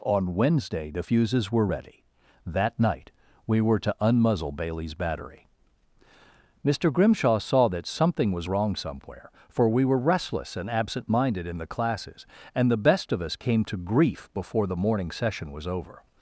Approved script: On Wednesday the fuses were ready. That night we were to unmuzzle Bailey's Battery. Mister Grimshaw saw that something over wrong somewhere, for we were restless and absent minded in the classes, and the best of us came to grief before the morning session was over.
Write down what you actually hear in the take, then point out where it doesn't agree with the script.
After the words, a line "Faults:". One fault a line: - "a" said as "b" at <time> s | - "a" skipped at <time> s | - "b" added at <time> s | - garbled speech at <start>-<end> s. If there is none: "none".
On Wednesday the fuses were ready. That night we were to unmuzzle Bailey's Battery. Mister Grimshaw saw that something was wrong somewhere, for we were restless and absent minded in the classes, and the best of us came to grief before the morning session was over.
Faults:
- "over" said as "was" at 8.3 s